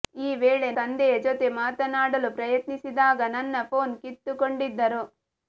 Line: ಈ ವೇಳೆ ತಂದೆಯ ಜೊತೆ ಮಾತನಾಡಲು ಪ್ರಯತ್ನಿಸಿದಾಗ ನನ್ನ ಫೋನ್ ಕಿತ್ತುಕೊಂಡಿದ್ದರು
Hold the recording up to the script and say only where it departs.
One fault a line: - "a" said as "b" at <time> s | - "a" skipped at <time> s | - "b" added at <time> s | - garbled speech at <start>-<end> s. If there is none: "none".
none